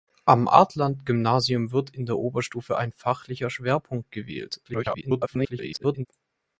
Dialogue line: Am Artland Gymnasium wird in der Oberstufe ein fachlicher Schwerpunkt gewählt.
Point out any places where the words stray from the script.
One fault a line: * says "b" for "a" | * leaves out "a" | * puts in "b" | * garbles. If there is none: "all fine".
* garbles